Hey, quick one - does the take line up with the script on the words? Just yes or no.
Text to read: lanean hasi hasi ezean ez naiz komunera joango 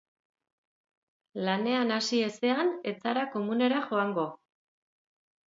no